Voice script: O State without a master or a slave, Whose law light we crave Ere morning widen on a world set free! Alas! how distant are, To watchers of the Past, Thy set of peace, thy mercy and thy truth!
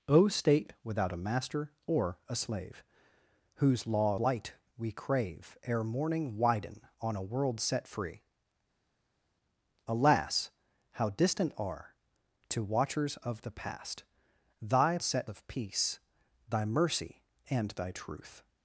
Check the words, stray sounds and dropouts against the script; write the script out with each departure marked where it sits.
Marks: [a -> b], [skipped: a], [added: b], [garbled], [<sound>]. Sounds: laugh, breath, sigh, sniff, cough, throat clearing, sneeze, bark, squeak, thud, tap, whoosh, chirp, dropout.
O State without a master or a slave, Whose law light we crave Ere morning widen on a world set free! Alas! how distant are, To watchers of the Past, Thy set of peace, thy mercy and thy truth!